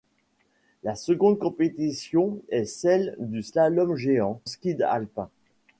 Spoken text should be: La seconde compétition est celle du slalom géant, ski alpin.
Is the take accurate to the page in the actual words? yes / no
yes